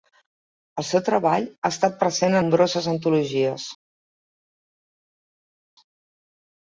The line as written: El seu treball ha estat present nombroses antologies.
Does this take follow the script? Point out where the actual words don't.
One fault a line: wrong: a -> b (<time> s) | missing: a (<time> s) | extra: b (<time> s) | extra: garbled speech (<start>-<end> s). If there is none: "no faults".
no faults